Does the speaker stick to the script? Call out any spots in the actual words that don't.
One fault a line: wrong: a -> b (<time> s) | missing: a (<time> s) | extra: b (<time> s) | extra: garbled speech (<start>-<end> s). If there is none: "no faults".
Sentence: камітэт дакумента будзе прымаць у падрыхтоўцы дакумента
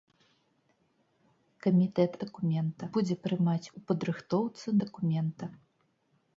no faults